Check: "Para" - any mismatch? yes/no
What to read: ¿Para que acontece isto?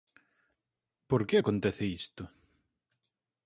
yes